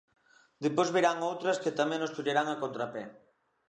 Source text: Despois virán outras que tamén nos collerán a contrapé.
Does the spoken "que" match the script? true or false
true